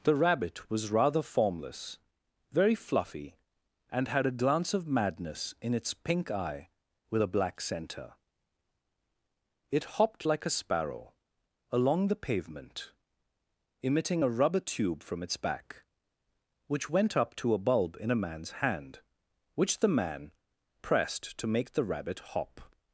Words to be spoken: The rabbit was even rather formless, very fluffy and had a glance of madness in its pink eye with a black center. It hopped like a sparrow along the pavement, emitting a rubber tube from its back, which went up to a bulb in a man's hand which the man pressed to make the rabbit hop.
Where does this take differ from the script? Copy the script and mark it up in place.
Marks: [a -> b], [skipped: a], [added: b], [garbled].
The rabbit was [skipped: even] rather formless, very fluffy and had a glance of madness in its pink eye with a black center. It hopped like a sparrow along the pavement, emitting a rubber tube from its back, which went up to a bulb in a man's hand which the man pressed to make the rabbit hop.